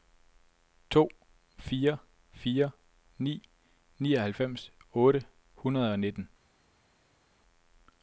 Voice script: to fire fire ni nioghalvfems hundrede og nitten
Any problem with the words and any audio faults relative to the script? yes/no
yes